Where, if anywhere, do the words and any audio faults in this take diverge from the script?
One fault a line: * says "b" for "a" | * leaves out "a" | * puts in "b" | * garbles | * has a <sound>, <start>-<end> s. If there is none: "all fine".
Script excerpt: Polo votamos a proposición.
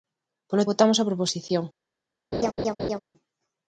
* has a laugh, 2.3-3.0 s